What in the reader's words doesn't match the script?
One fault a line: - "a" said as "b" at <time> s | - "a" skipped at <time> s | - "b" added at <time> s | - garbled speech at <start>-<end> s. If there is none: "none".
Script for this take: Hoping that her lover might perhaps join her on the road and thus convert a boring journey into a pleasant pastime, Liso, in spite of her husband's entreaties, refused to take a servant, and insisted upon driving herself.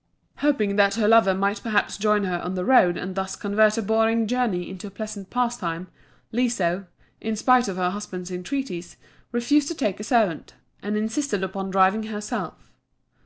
none